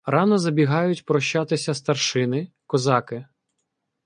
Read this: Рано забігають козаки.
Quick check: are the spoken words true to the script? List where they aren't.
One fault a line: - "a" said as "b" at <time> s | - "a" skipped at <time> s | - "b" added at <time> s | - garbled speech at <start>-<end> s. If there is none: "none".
- "прощатися старшини" added at 1.1 s